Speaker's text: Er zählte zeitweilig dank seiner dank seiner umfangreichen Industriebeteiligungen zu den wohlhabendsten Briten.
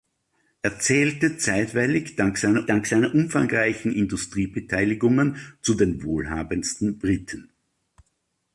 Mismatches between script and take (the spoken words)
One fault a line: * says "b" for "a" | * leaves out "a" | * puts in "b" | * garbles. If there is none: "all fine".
all fine